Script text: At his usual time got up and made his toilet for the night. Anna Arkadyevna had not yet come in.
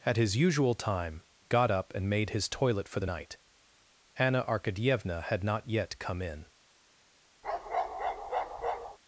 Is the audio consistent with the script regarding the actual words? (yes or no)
yes